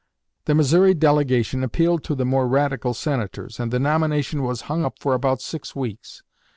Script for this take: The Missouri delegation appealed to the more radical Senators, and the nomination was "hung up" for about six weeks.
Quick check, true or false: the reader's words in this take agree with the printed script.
true